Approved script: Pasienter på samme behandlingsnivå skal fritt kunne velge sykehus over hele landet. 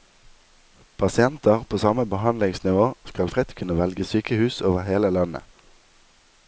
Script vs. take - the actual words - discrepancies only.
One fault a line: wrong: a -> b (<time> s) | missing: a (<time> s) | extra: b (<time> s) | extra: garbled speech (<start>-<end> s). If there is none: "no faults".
no faults